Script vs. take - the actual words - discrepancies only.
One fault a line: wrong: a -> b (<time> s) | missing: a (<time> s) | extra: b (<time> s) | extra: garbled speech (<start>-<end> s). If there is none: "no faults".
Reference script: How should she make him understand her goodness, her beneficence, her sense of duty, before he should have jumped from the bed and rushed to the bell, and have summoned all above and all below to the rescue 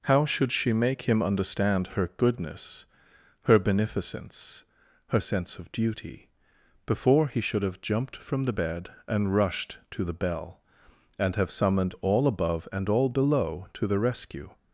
no faults